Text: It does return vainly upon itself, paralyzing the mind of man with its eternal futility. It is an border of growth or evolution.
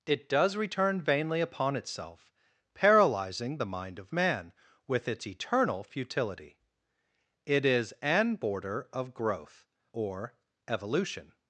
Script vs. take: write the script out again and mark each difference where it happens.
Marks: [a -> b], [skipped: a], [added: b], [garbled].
It does return vainly upon itself, paralyzing the mind of man with its eternal futility. It is an border of growth or evolution.